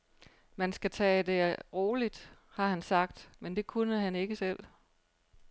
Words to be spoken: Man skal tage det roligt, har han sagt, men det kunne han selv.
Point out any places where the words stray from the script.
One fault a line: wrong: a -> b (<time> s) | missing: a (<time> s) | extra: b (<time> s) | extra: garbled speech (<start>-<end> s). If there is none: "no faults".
extra: ikke (4.1 s)